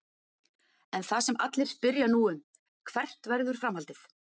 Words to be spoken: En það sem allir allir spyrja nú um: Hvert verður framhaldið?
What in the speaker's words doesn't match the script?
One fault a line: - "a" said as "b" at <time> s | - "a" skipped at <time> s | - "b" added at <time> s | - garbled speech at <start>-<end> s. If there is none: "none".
- "allir" skipped at 1.7 s